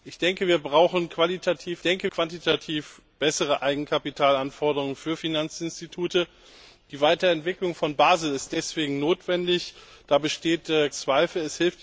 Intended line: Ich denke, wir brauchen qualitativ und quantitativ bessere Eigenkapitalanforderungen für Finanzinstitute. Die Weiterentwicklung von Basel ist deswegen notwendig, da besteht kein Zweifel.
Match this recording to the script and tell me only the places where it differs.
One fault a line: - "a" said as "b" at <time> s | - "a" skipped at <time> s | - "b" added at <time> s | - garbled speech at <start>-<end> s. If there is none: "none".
- "und" said as "denke" at 1.8 s
- "kein" skipped at 10.7 s